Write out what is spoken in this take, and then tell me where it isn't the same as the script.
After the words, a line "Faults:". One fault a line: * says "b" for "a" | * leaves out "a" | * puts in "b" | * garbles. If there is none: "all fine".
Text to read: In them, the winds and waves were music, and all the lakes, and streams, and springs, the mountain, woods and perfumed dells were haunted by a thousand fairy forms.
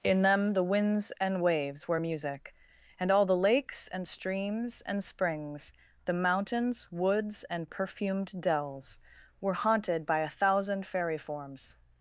In them, the winds and waves were music, and all the lakes, and streams, and springs, the mountains, woods and perfumed dells were haunted by a thousand fairy forms.
Faults:
* says "mountains" for "mountain"